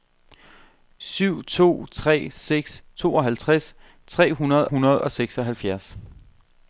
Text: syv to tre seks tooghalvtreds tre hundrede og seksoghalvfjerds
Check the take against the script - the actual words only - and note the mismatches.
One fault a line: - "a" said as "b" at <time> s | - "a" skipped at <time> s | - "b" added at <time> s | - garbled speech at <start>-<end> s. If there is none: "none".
- "hundrede" added at 4.6 s